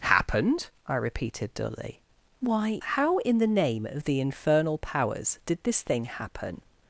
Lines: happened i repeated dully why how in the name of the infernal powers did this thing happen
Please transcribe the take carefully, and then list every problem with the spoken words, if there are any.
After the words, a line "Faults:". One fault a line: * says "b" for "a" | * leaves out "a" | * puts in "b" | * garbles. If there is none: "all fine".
happened i repeated dully why how in the name of the infernal powers did this thing happen
Faults:
all fine